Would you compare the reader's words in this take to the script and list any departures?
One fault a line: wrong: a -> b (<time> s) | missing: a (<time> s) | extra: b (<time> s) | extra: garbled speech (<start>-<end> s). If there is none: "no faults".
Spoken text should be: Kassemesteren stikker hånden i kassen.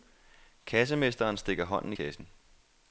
no faults